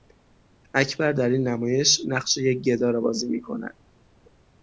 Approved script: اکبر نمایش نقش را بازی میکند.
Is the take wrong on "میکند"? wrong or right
right